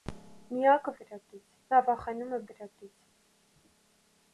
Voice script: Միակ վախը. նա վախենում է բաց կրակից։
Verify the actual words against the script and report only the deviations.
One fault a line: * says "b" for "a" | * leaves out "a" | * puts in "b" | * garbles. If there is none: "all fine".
* says "կրակից" for "վախը"
* leaves out "բաց"